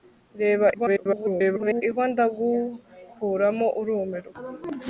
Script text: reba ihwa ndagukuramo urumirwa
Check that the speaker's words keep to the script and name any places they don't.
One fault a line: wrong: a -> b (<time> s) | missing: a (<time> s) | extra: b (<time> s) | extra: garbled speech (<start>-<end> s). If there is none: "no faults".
extra: garbled speech (0.7-1.8 s)